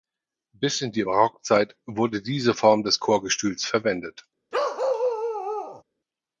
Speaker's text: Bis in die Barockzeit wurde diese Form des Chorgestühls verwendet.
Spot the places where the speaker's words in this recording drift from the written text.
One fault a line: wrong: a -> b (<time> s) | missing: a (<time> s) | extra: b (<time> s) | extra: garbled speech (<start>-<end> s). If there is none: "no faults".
no faults